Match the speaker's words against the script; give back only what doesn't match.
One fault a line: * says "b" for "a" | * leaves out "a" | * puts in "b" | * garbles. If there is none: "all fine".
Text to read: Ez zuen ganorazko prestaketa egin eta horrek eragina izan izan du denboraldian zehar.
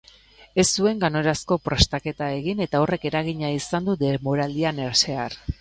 * leaves out "izan"